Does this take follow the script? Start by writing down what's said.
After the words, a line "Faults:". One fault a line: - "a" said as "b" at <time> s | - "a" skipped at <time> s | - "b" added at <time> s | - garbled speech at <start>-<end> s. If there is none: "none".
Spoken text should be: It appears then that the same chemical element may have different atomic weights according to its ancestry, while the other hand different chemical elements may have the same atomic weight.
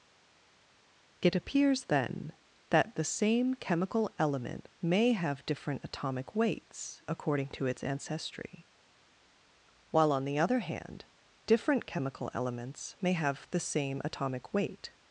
It appears then that the same chemical element may have different atomic weights according to its ancestry, while on the other hand different chemical elements may have the same atomic weight.
Faults:
- "on" added at 10.1 s